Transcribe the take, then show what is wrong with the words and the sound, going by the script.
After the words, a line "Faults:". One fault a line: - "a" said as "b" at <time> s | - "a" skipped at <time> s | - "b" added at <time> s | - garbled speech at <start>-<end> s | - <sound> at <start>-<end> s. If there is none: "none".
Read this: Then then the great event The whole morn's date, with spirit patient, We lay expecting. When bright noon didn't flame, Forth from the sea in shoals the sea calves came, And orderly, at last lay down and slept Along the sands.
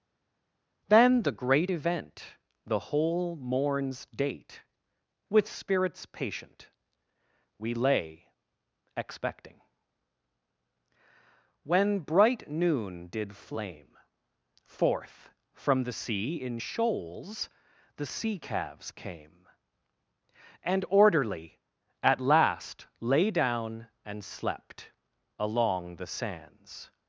Then the great event The whole morn's date, with spirits patient, We lay expecting. When bright noon did flame, Forth from the sea in shoals the sea calves came, And orderly, at last lay down and slept Along the sands.
Faults:
- "then" skipped at 1.2 s
- "spirit" said as "spirits" at 5.5 s
- "didn't" said as "did" at 13.1 s